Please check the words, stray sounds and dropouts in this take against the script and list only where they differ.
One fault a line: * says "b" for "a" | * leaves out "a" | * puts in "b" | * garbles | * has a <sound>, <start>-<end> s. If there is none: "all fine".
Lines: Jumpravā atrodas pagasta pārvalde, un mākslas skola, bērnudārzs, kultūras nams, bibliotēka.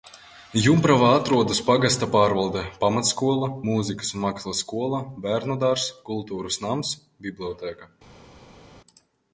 * puts in "pamatskola mūzikas"